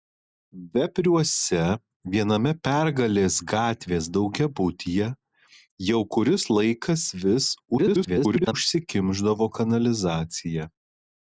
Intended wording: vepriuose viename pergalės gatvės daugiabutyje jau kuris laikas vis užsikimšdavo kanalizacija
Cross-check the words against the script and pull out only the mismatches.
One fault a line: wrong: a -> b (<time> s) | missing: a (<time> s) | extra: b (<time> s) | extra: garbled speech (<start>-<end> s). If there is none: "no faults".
extra: garbled speech (7.8-8.5 s)